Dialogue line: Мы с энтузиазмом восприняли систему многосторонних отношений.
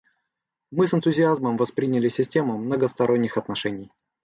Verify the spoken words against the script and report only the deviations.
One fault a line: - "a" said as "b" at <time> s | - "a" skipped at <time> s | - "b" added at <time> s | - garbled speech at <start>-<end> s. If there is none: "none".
none